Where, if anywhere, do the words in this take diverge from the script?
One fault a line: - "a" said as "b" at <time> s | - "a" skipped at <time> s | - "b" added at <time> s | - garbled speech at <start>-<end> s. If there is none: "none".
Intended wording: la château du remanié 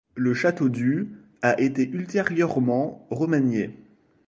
- "la" said as "le" at 0.1 s
- "a été ultérieurement" added at 1.4 s